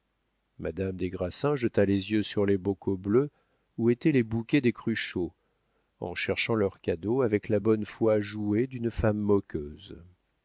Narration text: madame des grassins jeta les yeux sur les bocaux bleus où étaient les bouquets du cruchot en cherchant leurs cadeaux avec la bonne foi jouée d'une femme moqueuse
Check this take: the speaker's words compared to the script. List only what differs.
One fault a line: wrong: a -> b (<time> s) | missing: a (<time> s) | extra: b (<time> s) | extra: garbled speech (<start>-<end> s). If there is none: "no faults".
wrong: du -> des (4.6 s)